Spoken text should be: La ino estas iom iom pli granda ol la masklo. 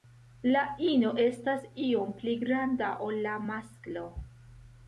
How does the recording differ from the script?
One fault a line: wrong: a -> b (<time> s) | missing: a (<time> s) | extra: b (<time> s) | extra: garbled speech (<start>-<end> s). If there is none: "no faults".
missing: iom (2.1 s)